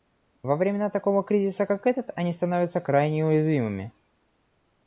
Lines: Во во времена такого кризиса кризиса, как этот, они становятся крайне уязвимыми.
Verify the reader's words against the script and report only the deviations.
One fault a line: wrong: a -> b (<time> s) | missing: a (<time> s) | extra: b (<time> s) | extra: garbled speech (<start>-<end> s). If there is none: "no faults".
missing: во (0.6 s)
missing: кризиса (1.7 s)